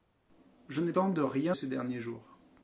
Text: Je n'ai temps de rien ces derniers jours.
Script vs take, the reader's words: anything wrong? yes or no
no